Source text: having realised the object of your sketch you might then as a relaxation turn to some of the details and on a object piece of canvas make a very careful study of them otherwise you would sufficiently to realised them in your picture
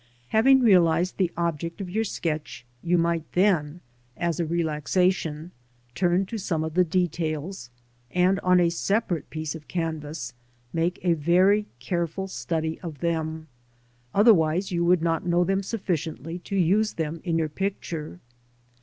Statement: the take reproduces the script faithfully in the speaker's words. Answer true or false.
false